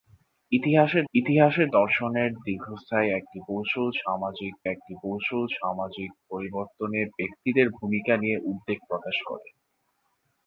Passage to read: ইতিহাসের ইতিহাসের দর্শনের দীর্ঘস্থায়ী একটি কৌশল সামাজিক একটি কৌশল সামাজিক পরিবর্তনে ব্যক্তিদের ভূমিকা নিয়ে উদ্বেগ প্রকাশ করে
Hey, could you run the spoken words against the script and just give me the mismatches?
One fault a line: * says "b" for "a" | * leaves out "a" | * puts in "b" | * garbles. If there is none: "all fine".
all fine